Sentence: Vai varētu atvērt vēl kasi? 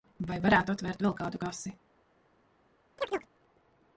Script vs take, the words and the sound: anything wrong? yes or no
yes